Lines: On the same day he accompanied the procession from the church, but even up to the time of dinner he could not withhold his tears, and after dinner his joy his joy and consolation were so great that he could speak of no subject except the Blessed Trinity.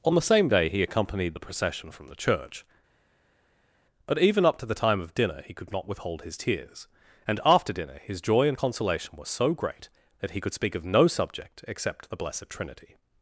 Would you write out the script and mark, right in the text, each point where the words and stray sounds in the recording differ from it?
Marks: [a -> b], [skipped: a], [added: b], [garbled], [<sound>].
On the same day he accompanied the procession from the church, but even up to the time of dinner he could not withhold his tears, and after dinner his joy [skipped: his joy] and consolation were so great that he could speak of no subject except the Blessed Trinity.